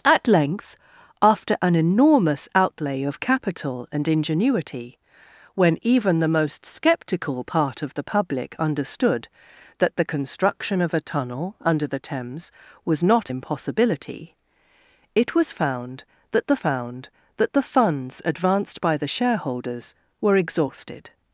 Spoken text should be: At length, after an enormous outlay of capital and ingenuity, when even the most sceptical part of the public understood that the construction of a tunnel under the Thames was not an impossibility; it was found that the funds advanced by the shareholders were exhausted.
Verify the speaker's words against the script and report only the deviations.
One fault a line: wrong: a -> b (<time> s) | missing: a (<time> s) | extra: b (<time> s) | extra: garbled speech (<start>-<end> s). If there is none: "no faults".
missing: an (13.3 s)
extra: found that the (16.6 s)